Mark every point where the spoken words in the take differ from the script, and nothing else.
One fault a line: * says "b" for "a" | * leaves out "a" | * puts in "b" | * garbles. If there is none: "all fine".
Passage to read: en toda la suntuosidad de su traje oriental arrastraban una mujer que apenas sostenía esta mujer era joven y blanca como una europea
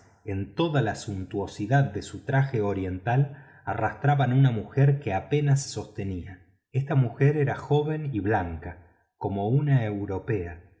all fine